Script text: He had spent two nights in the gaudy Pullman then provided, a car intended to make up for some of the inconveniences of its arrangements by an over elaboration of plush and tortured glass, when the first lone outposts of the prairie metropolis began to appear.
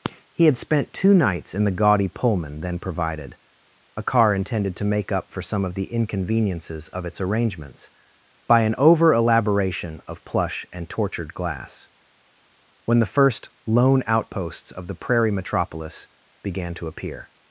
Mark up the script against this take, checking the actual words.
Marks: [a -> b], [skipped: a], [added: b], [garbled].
He had spent two nights in the gaudy Pullman then provided, a car intended to make up for some of the inconveniences of its arrangements by an over elaboration of plush and tortured glass, when the first lone outposts of the prairie metropolis began to appear.